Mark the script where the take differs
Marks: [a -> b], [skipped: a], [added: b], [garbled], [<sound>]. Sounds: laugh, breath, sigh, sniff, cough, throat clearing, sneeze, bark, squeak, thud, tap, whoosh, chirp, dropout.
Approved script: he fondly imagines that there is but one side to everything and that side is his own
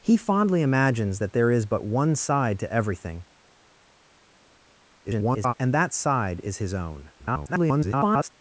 he fondly imagines that there is but one side to everything [garbled] and that side is his own [garbled]